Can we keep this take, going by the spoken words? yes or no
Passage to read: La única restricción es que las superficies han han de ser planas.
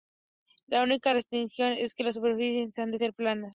no